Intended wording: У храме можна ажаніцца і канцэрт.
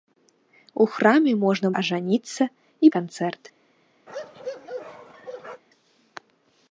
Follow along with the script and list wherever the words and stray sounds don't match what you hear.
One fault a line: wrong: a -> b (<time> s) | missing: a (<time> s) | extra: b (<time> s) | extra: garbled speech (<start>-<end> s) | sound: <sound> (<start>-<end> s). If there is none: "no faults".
sound: bark (4.1-5.6 s)